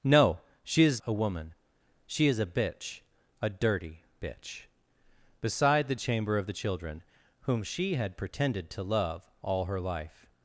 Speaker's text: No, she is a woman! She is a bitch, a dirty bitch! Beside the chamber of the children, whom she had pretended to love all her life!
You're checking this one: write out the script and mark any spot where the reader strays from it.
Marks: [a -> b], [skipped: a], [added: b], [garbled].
No, she is a woman! She is a bitch, a dirty bitch! Beside the chamber of the children, whom she had pretended to love all her life!